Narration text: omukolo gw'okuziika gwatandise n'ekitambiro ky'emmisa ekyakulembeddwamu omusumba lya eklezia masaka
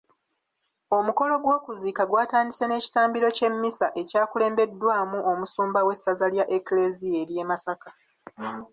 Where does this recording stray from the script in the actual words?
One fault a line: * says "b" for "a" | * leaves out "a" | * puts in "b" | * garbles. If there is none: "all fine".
* puts in "w'essaza"
* puts in "ery'e"